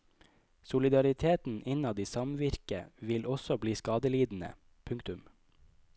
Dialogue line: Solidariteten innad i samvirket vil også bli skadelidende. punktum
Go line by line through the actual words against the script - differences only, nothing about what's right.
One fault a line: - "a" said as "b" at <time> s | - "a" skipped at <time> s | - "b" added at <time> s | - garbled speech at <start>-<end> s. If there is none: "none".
none